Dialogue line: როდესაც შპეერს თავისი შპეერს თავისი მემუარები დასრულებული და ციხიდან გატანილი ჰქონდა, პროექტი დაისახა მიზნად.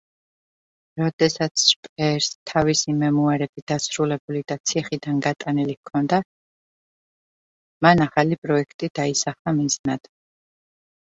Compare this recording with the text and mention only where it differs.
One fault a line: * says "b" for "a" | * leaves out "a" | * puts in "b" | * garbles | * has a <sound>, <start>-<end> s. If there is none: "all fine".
* leaves out "შპეერს თავისი"
* puts in "მან ახალი"